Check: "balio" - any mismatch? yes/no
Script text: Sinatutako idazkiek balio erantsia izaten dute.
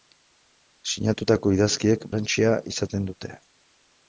yes